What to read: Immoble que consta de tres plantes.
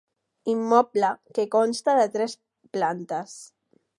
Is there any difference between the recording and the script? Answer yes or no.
no